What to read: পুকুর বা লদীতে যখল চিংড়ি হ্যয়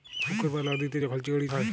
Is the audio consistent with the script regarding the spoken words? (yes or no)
yes